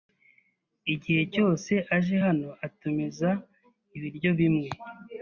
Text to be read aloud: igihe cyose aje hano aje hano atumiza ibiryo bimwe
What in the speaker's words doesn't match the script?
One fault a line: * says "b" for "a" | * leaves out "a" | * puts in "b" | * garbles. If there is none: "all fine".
* leaves out "aje hano"